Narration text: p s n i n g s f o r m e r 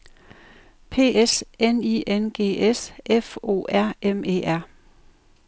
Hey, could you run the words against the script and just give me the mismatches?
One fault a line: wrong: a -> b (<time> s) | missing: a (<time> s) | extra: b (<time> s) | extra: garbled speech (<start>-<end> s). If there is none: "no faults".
no faults